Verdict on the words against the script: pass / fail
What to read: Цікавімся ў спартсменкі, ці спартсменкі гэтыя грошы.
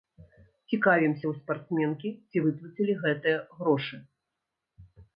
fail